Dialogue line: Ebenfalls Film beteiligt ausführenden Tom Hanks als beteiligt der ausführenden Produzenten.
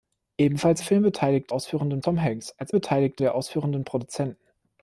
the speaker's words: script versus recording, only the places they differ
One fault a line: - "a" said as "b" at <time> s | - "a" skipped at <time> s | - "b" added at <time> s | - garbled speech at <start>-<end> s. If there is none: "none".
none